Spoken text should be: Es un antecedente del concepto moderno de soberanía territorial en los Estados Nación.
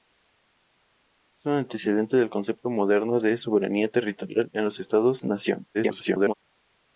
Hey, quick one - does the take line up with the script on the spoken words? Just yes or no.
no